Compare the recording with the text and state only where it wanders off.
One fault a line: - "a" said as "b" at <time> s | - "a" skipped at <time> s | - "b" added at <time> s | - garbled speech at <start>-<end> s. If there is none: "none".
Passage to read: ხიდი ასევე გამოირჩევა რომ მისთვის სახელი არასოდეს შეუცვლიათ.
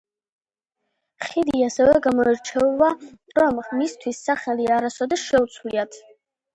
none